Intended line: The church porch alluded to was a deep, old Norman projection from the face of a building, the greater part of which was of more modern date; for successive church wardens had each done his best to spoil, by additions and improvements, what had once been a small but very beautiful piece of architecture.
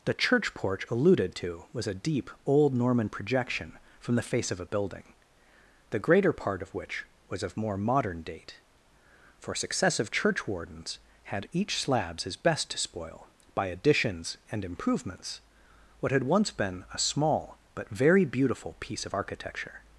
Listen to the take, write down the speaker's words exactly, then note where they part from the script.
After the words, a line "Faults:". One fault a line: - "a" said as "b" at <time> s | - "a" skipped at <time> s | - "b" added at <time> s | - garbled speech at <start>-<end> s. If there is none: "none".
The church porch alluded to was a deep, old Norman projection from the face of a building, the greater part of which was of more modern date; for successive church wardens had each slabs his best to spoil, by additions and improvements, what had once been a small but very beautiful piece of architecture.
Faults:
- "done" said as "slabs" at 11.8 s